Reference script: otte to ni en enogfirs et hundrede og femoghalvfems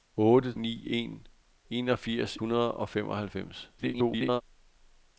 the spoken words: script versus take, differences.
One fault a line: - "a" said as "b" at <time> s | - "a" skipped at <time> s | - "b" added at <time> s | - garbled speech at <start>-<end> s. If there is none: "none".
- "to" skipped at 0.5 s
- "et" skipped at 2.4 s
- garbled speech at 3.8-4.4 s